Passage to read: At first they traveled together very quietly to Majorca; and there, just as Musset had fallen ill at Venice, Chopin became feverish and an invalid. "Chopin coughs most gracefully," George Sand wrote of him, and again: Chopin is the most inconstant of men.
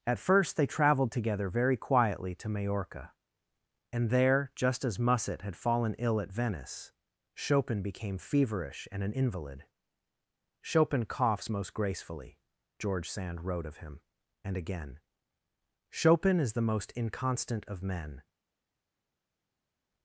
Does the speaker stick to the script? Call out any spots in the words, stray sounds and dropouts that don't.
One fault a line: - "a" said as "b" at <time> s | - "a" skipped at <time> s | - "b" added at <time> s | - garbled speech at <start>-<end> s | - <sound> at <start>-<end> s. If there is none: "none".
none